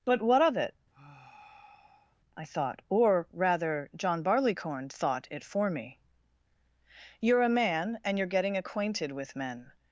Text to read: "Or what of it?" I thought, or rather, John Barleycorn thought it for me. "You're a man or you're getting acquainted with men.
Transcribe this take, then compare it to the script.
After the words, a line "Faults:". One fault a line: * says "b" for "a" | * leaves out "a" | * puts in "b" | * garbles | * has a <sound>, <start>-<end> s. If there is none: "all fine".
"But what of it?" I thought, or rather, John Barleycorn thought it for me. "You're a man and you're getting acquainted with men.
Faults:
* says "But" for "Or"
* has a sigh, 0.9-2.2 s
* says "and" for "or"